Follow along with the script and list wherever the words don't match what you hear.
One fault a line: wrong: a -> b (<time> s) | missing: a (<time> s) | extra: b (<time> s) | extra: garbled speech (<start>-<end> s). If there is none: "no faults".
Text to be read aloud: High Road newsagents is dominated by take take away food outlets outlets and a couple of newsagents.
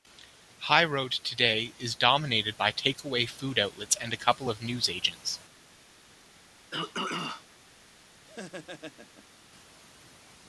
wrong: newsagents -> today (1.1 s)
missing: take (3.0 s)
missing: outlets (4.0 s)